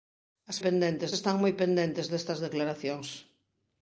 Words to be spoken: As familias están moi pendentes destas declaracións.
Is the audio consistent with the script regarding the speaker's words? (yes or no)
no